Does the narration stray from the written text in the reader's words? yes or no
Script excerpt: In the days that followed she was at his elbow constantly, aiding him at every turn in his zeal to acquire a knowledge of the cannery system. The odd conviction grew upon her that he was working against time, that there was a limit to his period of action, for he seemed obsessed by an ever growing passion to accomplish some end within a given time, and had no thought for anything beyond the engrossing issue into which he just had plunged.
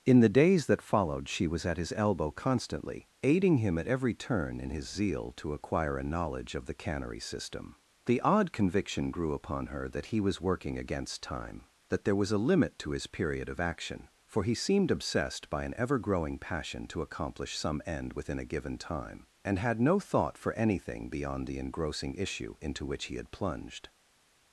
yes